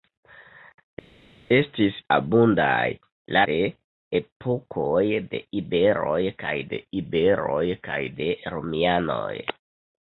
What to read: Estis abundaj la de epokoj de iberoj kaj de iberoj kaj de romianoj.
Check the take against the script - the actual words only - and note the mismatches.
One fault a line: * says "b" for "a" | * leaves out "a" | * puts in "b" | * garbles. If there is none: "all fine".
all fine